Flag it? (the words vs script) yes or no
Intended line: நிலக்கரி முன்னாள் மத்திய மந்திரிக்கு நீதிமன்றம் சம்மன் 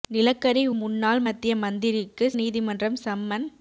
no